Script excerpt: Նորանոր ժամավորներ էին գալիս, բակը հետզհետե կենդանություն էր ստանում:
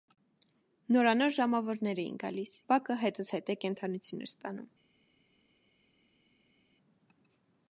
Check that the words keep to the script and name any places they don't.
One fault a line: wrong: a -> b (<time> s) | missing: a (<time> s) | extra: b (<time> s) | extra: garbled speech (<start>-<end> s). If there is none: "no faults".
no faults